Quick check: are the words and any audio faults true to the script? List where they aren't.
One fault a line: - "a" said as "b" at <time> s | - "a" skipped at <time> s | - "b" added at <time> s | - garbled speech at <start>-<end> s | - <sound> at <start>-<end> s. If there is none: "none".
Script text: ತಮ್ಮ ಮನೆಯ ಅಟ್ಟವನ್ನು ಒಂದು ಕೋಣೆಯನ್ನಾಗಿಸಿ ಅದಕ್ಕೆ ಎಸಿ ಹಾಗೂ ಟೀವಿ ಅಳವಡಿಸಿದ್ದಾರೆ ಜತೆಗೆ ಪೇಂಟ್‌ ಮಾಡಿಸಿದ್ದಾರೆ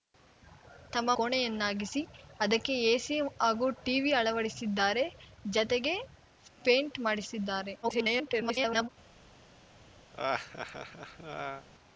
- "ಮನೆಯ ಅಟ್ಟವನ್ನು ಒಂದು" skipped at 1.1 s
- garbled speech at 7.8-8.9 s
- laugh at 10.1-11.7 s